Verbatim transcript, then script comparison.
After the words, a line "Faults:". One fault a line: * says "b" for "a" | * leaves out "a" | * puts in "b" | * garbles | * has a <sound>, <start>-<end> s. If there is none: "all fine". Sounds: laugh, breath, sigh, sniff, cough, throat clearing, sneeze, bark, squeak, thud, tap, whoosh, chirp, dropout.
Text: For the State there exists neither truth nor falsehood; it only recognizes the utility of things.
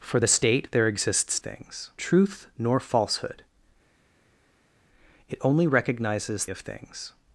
For the State there exists things truth nor falsehood; it only recognizes of things.
Faults:
* says "things" for "neither"
* leaves out "the utility"